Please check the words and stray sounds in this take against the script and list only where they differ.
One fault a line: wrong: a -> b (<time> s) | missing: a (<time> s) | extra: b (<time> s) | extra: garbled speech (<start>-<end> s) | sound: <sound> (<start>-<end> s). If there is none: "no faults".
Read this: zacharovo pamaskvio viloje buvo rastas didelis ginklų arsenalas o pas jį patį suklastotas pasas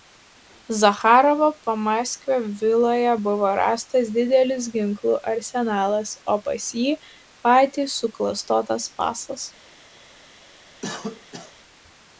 sound: cough (10.8-11.5 s)